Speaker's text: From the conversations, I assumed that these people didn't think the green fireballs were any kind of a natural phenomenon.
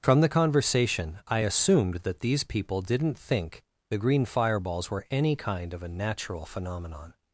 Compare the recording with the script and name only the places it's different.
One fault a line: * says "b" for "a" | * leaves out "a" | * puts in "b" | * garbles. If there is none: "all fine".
* says "conversation" for "conversations"